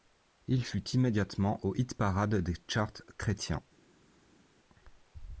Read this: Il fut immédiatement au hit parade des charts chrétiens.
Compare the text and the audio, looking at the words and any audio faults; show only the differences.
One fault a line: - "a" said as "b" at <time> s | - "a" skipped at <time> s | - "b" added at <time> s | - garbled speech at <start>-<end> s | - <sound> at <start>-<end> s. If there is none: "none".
none